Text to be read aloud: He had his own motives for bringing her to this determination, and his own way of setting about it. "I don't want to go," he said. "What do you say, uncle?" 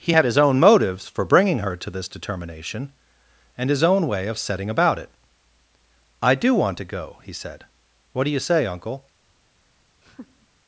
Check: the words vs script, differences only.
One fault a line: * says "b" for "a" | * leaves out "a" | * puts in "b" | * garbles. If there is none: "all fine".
* says "do" for "don't"